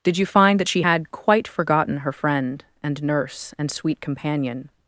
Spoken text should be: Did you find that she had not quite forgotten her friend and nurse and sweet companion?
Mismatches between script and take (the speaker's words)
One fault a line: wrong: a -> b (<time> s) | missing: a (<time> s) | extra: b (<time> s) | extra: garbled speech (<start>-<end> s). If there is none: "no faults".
missing: not (1.1 s)